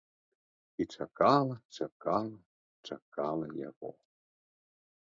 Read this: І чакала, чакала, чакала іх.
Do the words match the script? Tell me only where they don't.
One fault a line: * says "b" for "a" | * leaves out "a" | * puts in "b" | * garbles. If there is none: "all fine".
* says "яго" for "іх"